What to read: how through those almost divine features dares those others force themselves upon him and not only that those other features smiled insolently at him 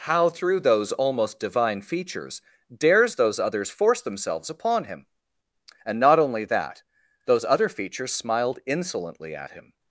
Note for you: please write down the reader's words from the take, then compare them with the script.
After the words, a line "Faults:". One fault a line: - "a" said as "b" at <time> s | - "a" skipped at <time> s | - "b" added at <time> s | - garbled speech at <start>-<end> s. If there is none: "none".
how through those almost divine features dares those others force themselves upon him and not only that those other features smiled insolently at him
Faults:
none